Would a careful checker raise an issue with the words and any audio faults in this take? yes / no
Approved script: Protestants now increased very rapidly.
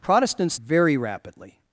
yes